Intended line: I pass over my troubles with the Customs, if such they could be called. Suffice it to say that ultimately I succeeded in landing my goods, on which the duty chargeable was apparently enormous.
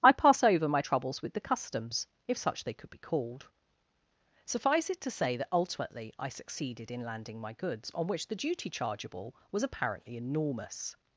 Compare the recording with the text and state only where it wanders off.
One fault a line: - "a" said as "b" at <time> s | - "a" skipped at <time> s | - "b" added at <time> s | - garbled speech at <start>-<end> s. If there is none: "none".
none